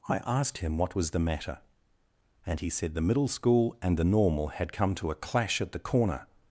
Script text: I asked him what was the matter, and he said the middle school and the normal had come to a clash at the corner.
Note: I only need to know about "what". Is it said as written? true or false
true